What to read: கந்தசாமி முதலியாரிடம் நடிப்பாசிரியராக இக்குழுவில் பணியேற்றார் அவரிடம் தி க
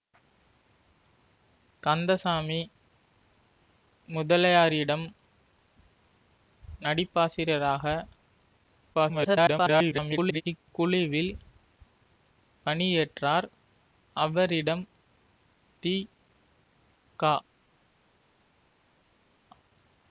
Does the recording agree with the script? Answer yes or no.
no